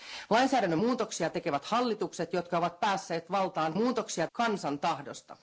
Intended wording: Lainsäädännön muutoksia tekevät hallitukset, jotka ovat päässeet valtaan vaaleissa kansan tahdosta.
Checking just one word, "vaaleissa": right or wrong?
wrong